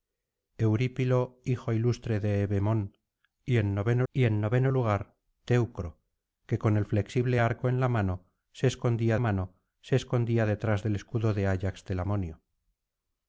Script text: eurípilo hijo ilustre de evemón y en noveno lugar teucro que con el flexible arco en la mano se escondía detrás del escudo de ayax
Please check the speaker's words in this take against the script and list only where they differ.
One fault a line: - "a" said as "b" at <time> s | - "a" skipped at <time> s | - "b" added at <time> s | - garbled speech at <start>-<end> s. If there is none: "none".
- "y en noveno" added at 4.1 s
- "mano se escondía" added at 9.2 s